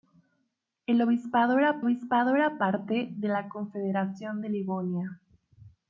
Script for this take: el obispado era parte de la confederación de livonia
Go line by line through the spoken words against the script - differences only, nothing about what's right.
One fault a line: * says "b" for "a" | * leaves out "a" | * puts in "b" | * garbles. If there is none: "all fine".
* puts in "obispado era"